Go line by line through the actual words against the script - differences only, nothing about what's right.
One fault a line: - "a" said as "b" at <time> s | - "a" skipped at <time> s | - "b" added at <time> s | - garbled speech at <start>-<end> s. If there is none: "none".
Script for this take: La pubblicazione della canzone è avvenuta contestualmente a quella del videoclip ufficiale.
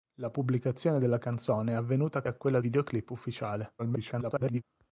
- "contestualmente" skipped at 2.2 s
- "del" skipped at 2.6 s
- garbled speech at 3.8-4.6 s